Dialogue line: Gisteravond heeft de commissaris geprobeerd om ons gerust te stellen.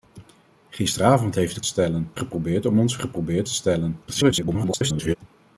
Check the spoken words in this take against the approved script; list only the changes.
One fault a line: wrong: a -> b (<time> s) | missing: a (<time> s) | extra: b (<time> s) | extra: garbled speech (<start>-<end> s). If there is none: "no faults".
wrong: commissaris -> stellen (1.7 s)
wrong: gerust -> geprobeerd (3.0 s)
extra: garbled speech (4.1-5.2 s)